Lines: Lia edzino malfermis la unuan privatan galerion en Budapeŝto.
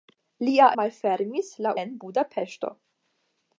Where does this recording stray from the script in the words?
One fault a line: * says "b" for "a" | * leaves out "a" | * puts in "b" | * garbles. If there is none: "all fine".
* leaves out "edzino"
* leaves out "unuan privatan galerion"